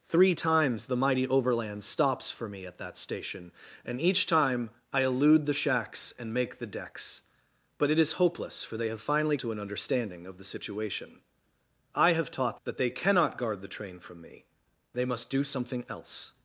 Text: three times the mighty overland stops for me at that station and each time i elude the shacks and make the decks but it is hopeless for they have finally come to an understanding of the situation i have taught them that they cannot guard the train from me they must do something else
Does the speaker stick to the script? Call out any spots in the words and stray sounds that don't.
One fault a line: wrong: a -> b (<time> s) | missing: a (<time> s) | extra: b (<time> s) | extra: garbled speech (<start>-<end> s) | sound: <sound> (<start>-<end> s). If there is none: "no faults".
missing: come (9.4 s)
missing: them (12.6 s)